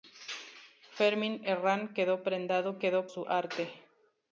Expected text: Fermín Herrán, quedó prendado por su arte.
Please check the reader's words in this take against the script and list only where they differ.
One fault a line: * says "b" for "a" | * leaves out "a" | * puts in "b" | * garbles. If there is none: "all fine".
* says "quedó" for "por"